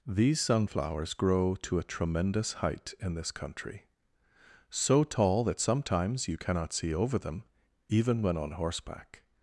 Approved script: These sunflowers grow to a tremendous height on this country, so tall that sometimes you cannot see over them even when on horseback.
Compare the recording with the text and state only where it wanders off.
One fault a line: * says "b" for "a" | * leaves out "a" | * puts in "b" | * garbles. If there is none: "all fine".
* says "in" for "on"